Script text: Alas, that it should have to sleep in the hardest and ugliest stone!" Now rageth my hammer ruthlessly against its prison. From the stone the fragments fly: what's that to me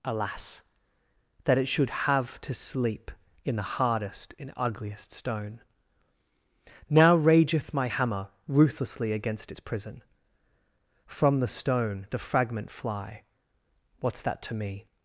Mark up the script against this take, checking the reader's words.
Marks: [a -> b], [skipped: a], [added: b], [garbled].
Alas, that it should have to sleep in the hardest and ugliest stone!" Now rageth my hammer ruthlessly against its prison. From the stone the [fragments -> fragment] fly: what's that to me